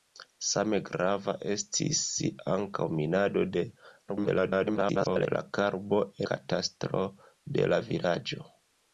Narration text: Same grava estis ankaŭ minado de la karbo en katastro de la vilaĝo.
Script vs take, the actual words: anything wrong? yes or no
yes